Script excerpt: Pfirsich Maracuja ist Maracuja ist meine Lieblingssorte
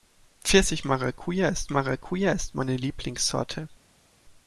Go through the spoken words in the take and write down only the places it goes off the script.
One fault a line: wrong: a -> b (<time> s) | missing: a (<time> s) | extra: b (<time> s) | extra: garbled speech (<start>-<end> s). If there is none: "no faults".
no faults